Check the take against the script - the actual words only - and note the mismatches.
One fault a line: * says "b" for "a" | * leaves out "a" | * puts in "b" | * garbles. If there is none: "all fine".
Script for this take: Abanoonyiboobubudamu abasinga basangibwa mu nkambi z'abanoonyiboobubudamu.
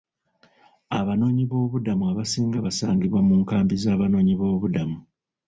all fine